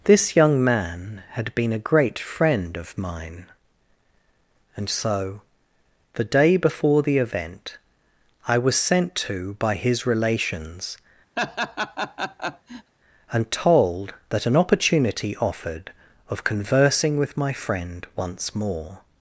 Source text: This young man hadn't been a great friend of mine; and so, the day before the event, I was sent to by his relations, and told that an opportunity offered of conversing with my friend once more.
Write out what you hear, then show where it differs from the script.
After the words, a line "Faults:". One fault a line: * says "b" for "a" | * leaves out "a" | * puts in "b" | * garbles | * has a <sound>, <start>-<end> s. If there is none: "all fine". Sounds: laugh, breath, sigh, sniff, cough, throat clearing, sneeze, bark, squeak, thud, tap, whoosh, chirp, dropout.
This young man had been a great friend of mine; and so, the day before the event, I was sent to by his relations, and told that an opportunity offered of conversing with my friend once more.
Faults:
* says "had" for "hadn't"
* has a laugh, 11.4-12.9 s